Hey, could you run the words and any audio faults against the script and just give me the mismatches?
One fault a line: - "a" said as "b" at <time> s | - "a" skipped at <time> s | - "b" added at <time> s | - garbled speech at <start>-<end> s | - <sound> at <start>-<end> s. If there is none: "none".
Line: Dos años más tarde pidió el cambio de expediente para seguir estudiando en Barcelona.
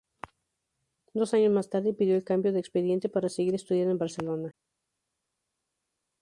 none